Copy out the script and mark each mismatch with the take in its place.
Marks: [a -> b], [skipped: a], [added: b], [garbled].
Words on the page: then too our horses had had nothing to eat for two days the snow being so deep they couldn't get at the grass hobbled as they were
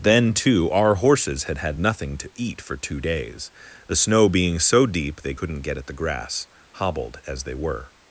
then too our horses had had nothing to eat for two days the snow being so deep they couldn't get at the grass hobbled as they were